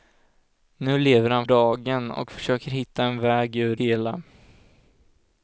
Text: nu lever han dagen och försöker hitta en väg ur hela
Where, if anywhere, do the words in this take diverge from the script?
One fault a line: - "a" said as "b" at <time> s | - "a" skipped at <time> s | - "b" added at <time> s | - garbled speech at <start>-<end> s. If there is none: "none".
none